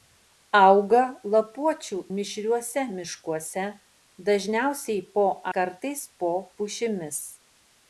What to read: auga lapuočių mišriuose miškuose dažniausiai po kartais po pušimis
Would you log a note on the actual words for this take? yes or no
no